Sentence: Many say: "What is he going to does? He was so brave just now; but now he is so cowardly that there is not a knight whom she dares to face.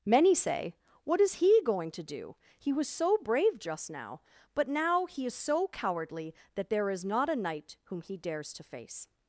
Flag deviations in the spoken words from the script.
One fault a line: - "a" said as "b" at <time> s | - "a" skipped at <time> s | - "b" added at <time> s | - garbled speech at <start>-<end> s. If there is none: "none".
- "does" said as "do" at 2.0 s
- "she" said as "he" at 8.0 s